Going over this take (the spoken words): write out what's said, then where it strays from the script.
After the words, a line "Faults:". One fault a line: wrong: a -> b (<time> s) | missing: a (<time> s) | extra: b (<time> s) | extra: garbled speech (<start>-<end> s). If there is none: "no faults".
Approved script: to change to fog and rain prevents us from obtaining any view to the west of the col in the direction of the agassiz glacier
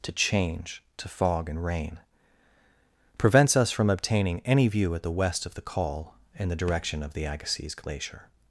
to change to fog and rain prevents us from obtaining any view at the west of the col in the direction of the agassiz glacier
Faults:
wrong: to -> at (5.0 s)